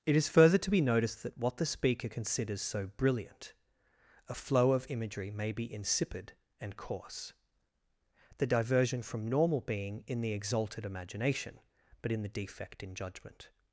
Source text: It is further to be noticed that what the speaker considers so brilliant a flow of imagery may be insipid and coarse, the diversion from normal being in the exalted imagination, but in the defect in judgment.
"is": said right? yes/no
yes